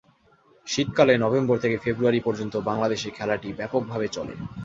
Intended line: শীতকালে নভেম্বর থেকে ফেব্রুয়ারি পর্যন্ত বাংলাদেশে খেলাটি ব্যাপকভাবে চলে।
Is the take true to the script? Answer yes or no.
yes